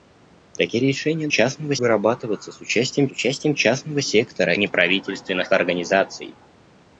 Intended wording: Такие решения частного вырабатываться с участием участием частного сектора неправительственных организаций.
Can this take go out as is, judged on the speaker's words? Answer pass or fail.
pass